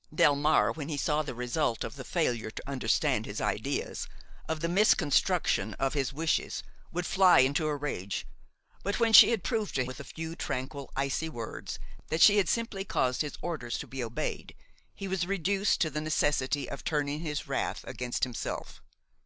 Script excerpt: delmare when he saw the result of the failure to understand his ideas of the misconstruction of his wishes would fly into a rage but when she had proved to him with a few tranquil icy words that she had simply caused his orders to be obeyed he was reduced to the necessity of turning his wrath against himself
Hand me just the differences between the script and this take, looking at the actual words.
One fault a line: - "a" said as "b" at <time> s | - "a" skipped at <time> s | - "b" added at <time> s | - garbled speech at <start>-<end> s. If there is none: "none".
- "him" skipped at 9.8 s